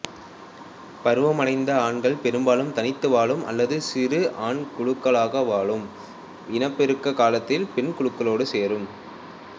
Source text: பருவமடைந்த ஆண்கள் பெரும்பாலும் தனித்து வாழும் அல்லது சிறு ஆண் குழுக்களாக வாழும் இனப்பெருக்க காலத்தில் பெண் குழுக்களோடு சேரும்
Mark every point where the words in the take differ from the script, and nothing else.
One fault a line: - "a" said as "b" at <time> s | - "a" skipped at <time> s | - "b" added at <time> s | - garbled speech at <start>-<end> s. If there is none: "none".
none